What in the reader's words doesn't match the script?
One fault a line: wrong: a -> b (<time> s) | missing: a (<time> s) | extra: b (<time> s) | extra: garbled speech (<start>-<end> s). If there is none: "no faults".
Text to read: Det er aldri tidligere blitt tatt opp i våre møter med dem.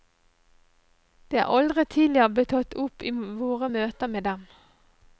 no faults